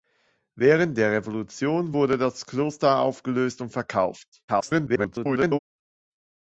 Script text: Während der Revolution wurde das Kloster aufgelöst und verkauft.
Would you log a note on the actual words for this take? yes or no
yes